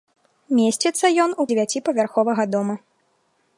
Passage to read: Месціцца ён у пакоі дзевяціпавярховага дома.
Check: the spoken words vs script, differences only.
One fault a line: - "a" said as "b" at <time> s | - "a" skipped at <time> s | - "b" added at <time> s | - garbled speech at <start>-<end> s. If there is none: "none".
- "пакоі" skipped at 1.5 s